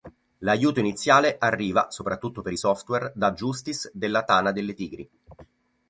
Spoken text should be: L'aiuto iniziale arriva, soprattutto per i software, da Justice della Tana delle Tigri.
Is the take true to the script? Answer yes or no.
yes